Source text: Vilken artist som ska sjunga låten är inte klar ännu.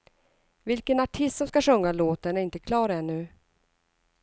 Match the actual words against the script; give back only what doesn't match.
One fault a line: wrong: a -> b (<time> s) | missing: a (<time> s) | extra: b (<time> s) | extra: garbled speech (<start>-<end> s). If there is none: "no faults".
no faults